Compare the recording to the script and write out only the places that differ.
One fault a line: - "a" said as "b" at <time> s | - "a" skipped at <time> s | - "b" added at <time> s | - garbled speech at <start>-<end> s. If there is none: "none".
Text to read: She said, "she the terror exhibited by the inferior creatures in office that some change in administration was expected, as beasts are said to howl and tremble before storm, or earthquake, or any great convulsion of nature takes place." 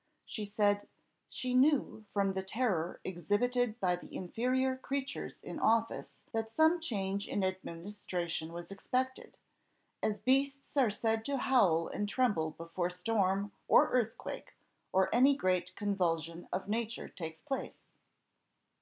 - "knew from" added at 1.5 s